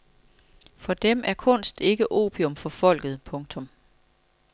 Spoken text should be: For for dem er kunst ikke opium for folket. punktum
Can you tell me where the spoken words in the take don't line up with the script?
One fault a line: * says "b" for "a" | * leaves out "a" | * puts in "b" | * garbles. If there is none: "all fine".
* leaves out "for"